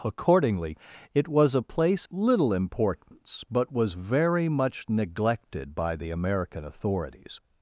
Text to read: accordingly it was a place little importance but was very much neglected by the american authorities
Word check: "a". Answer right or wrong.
right